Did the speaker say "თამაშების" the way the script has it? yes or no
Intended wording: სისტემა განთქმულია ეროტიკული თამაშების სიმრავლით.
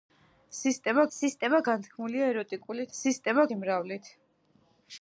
no